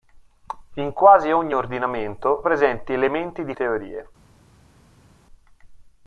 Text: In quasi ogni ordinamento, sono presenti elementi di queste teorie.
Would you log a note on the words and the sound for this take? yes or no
yes